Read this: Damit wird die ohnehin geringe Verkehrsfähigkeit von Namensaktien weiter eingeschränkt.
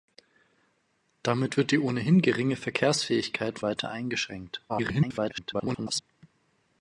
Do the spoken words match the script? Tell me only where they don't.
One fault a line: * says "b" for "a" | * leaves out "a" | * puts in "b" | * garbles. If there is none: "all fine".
* leaves out "von Namensaktien"
* garbles